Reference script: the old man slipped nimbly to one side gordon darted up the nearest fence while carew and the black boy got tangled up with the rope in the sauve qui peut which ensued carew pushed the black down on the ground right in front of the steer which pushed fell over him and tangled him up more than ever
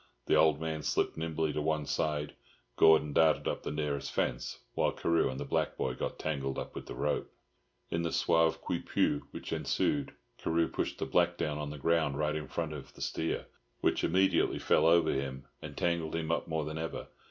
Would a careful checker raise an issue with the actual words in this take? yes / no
yes